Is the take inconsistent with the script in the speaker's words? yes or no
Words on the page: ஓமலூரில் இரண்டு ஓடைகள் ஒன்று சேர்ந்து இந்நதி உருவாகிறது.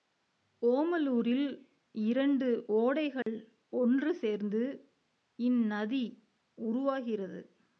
no